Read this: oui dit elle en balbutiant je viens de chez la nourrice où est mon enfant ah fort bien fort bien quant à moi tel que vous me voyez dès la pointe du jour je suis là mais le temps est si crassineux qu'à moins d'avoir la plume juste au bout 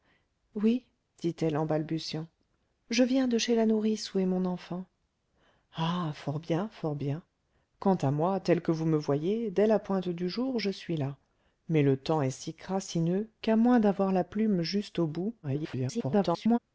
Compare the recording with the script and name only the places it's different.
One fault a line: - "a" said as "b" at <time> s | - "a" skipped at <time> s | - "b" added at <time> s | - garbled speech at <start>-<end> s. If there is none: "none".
- garbled speech at 15.4-16.6 s